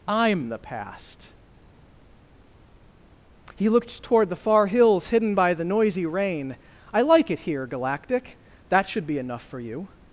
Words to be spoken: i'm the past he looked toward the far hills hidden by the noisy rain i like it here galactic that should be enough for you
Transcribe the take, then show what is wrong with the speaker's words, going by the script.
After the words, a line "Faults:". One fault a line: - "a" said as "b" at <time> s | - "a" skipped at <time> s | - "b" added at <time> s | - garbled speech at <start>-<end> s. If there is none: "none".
i'm the past he looked toward the far hills hidden by the noisy rain i like it here galactic that should be enough for you
Faults:
none